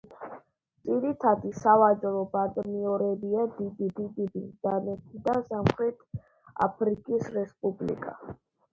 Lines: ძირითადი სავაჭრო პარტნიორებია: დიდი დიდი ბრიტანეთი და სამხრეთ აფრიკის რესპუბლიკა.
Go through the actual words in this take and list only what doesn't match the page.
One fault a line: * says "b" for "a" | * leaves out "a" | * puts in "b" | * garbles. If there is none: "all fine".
all fine